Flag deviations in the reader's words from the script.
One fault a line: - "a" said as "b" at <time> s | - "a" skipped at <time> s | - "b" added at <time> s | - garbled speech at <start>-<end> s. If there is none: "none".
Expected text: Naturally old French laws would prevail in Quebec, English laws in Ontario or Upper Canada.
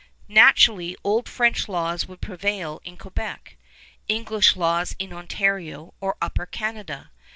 none